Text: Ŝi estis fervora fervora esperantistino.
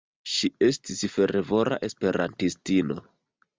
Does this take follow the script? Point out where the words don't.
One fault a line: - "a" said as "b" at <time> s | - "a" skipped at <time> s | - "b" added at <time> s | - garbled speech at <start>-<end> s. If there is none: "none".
- "fervora" skipped at 1.8 s